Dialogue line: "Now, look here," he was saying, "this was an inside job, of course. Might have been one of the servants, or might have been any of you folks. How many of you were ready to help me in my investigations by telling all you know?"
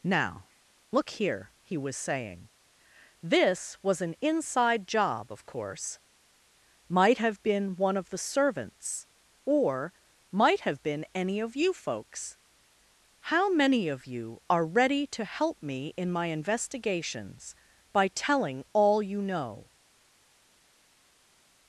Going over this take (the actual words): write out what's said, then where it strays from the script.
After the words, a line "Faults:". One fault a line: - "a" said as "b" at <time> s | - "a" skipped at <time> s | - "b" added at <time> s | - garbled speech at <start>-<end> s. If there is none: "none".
"Now, look here," he was saying, "this was an inside job, of course. Might have been one of the servants, or might have been any of you folks. How many of you are ready to help me in my investigations by telling all you know?"
Faults:
- "were" said as "are" at 14.5 s